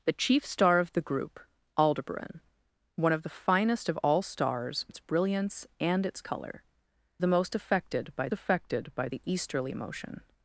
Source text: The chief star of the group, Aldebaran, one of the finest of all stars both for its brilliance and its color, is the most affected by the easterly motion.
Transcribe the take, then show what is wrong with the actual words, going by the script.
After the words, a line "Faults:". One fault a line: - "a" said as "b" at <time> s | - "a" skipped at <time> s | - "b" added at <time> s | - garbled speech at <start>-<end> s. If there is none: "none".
The chief star of the group, Aldebaran, one of the finest of all stars its brilliance and its color, the most affected by affected by the easterly motion.
Faults:
- "both for" skipped at 4.9 s
- "is" skipped at 6.6 s
- "affected by" added at 8.3 s